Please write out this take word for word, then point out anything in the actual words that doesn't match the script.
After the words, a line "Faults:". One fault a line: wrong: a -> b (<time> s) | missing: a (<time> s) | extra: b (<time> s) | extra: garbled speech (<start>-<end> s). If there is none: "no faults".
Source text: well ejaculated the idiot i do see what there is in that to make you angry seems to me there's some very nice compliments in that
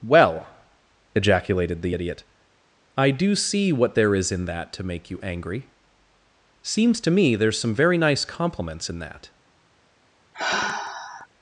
well ejaculated the idiot i do see what there is in that to make you angry seems to me there's some very nice compliments in that
Faults:
no faults